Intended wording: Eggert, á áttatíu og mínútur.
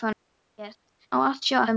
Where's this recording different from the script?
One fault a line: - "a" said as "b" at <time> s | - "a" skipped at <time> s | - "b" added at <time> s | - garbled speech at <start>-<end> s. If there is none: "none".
none